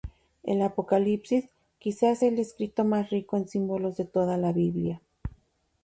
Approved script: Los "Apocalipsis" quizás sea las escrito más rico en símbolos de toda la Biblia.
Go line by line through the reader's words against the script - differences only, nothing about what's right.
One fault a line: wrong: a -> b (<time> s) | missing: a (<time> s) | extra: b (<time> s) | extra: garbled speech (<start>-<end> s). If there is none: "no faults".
wrong: Los -> El (0.4 s)
wrong: las -> el (2.3 s)